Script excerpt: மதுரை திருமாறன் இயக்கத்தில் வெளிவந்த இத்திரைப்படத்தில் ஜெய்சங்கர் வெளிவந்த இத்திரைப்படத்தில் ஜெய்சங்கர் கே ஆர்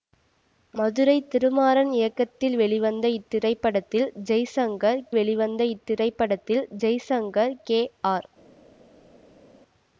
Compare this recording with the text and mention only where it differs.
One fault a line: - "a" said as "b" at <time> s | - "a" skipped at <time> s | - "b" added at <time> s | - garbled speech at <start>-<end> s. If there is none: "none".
none